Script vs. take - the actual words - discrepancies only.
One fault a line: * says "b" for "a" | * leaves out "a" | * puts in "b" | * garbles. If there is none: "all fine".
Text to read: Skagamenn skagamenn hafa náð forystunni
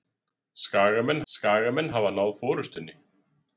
all fine